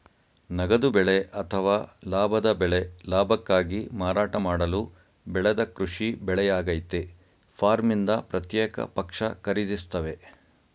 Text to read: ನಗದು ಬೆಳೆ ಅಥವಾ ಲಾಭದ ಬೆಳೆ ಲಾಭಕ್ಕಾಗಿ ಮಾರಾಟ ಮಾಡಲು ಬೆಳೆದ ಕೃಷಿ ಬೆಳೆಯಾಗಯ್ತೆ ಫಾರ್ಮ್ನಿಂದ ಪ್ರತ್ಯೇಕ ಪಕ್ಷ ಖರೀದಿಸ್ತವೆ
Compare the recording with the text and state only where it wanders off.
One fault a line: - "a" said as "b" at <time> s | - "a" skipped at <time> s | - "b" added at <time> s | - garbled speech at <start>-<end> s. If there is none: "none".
none